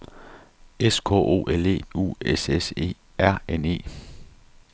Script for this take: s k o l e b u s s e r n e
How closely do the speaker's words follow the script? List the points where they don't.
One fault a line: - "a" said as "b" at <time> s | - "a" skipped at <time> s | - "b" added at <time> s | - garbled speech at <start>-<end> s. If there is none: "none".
- "b" skipped at 1.8 s